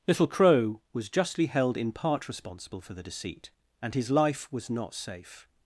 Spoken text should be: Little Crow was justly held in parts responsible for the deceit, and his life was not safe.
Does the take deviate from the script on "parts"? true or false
true